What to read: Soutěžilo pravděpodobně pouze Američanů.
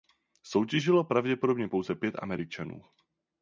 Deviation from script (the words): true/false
true